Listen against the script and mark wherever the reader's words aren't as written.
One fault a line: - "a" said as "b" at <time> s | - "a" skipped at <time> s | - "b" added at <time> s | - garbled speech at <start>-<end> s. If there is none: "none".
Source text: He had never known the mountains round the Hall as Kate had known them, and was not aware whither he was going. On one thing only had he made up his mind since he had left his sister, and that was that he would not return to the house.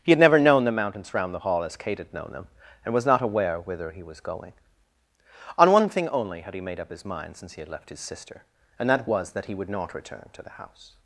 none